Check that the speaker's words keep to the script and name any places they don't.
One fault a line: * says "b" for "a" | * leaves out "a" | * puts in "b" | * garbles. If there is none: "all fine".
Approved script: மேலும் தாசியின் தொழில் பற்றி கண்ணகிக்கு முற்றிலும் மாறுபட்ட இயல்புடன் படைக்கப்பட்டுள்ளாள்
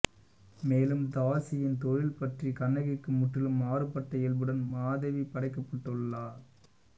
* puts in "மாதவி"